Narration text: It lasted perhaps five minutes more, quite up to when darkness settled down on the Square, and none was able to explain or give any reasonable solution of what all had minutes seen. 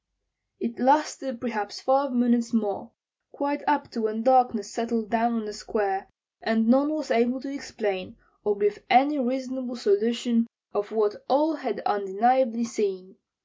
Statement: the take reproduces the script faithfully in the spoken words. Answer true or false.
false